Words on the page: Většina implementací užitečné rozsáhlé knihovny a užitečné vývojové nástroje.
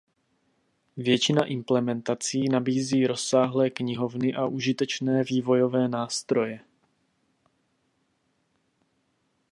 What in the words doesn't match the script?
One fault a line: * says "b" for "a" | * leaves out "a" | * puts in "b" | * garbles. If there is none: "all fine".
* says "nabízí" for "užitečné"